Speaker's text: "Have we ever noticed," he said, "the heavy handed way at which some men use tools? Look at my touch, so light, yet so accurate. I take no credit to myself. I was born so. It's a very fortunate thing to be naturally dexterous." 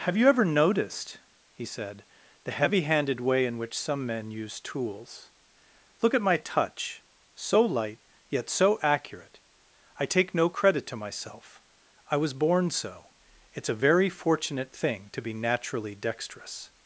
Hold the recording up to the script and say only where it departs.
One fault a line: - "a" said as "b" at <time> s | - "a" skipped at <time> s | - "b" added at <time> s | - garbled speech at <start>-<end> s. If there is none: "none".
- "we" said as "you" at 0.2 s
- "at" said as "in" at 3.5 s